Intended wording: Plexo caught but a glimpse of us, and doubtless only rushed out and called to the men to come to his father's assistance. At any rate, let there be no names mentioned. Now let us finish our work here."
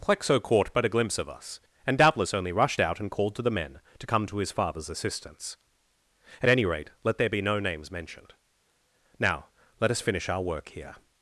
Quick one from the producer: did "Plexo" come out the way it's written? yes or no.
yes